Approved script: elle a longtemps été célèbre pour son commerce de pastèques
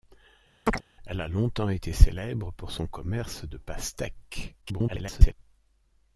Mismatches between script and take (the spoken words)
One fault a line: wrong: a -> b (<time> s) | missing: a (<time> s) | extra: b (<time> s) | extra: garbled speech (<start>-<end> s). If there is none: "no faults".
extra: garbled speech (4.6-5.3 s)